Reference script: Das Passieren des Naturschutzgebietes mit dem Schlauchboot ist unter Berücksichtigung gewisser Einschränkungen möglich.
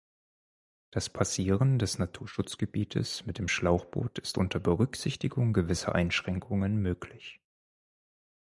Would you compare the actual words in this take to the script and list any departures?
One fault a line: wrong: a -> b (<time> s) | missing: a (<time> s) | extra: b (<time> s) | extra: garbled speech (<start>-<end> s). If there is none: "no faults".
no faults